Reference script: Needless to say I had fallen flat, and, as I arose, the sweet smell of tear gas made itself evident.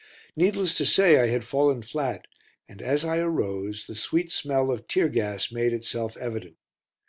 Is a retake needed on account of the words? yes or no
no